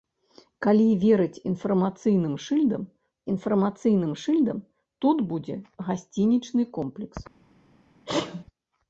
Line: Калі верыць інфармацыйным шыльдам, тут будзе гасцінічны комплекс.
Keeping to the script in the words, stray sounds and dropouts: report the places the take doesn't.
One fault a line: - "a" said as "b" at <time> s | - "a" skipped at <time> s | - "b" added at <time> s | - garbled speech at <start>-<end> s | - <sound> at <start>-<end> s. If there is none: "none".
- "інфармацыйным шыльдам" added at 3.3 s
- sneeze at 8.1-8.4 s